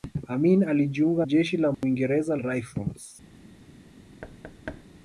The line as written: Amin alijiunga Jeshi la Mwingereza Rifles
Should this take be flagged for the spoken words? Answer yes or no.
no